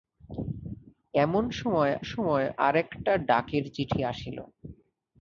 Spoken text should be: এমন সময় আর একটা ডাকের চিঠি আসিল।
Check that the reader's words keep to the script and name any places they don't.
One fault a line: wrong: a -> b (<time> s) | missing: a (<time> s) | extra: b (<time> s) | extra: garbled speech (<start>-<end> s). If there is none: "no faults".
extra: সময় (2.0 s)